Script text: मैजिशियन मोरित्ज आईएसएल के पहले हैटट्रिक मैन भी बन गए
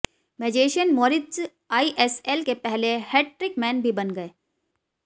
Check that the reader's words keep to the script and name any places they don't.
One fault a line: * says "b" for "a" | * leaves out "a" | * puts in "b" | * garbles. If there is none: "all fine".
all fine